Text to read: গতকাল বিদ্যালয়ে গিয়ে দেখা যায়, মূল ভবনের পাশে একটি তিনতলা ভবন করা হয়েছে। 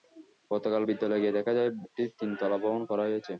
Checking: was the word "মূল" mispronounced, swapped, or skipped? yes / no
yes